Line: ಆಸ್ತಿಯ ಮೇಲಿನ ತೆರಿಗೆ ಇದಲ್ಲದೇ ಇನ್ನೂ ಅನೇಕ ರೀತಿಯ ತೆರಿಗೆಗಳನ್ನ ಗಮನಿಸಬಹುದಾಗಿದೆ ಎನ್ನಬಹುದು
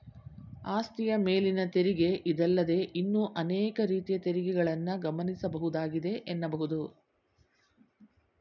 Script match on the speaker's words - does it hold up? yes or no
yes